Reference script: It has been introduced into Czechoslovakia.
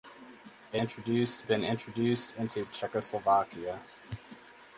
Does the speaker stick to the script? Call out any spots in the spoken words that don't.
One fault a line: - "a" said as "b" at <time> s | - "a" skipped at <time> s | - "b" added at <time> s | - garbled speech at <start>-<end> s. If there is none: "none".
- "has" said as "introduced" at 0.7 s